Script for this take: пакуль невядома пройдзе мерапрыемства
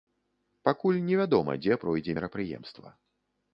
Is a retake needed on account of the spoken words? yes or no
yes